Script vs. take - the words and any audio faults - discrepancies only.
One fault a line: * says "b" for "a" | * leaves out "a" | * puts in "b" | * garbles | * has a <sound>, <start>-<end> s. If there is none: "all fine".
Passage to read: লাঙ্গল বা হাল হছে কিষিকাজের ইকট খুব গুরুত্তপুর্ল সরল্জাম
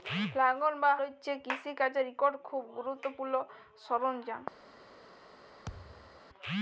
* leaves out "হাল"
* has a thud, 5.7-6.2 s